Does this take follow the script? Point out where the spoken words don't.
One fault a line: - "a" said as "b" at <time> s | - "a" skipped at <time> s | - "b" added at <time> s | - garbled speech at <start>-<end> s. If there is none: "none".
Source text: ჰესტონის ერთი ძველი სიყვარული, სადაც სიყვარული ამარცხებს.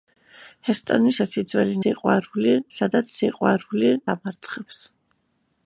none